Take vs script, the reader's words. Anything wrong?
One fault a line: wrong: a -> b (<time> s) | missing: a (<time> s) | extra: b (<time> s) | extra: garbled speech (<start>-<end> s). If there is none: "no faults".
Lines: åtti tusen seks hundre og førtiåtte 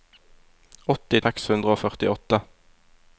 missing: tusen (1.2 s)